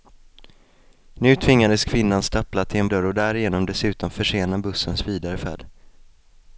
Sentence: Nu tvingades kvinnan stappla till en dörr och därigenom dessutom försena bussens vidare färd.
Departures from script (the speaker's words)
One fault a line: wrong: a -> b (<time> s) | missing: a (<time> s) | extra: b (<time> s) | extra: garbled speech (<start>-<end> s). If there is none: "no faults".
no faults